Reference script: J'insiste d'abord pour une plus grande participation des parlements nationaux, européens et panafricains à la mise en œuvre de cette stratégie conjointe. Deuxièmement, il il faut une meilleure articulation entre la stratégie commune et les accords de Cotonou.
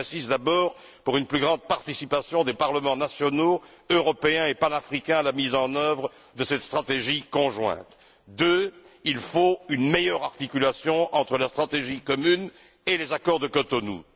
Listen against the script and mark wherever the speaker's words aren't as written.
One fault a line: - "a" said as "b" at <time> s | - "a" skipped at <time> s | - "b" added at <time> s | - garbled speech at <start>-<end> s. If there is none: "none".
- "il" skipped at 9.2 s